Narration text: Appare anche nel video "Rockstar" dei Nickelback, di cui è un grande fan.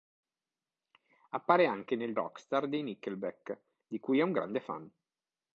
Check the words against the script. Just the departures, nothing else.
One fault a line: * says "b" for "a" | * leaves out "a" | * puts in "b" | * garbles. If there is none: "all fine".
* leaves out "video"